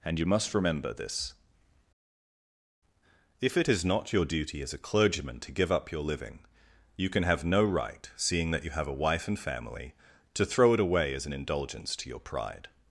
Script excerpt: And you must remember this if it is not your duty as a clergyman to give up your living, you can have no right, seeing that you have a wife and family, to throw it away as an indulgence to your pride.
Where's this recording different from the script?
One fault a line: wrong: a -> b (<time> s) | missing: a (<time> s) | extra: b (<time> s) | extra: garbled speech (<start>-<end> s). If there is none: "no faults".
no faults